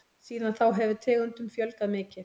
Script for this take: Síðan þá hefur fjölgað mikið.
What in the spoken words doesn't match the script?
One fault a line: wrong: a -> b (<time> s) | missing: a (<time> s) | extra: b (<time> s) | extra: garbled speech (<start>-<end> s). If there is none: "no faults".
extra: tegundum (1.1 s)